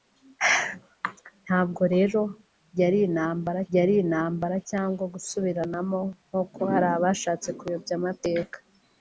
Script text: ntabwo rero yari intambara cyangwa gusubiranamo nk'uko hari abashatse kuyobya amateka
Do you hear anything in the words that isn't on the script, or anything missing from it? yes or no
yes